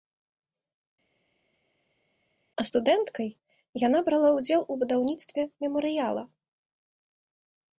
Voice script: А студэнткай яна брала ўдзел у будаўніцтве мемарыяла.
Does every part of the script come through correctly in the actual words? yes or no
yes